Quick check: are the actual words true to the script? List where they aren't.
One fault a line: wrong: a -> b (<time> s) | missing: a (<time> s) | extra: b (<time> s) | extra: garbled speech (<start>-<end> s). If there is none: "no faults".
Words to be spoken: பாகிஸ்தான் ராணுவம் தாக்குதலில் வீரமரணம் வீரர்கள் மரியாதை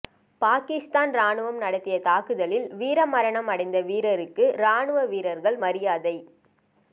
extra: நடத்திய (1.6 s)
extra: அடைந்த வீரருக்கு ராணுவ (3.5 s)